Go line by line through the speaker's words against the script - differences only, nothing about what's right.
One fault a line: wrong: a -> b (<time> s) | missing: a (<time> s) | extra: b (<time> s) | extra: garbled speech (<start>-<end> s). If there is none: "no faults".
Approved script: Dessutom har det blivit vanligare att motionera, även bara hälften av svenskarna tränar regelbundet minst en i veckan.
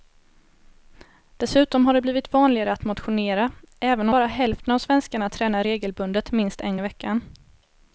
no faults